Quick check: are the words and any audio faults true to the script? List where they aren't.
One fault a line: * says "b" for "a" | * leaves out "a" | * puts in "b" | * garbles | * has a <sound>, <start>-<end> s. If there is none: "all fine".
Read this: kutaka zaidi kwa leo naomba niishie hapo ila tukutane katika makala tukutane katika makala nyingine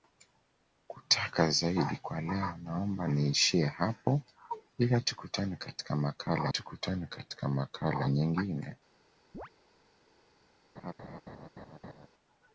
* has a chirp, 9.3-9.5 s
* has a laugh, 10.8-12.1 s